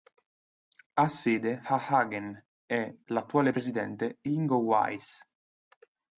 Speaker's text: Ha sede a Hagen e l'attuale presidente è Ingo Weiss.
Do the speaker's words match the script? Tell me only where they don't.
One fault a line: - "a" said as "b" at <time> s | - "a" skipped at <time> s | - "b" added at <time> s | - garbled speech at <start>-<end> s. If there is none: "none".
none